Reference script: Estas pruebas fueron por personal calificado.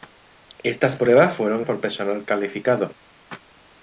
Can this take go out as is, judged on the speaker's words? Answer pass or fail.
pass